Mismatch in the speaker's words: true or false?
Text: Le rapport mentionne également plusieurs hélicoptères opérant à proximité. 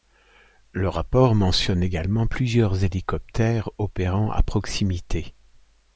false